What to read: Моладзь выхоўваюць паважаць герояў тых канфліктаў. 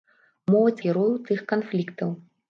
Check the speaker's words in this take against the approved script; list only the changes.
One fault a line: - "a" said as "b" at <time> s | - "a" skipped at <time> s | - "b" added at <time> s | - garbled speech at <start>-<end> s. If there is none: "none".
- "выхоўваюць паважаць" skipped at 0.8 s